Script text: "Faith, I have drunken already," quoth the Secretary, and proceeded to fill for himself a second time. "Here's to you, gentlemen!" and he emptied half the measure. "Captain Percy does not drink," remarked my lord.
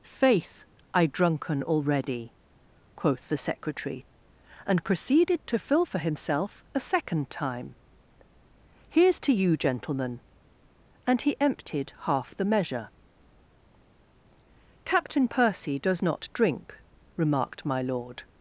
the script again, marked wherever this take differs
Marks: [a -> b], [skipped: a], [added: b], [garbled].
"Faith, I [skipped: have] drunken already," quoth the Secretary, and proceeded to fill for himself a second time. "Here's to you, gentlemen!" and he emptied half the measure. "Captain Percy does not drink," remarked my lord.